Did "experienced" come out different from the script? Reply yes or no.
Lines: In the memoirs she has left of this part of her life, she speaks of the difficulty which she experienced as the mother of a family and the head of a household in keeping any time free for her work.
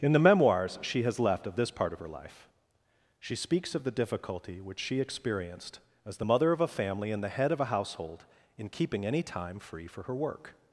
no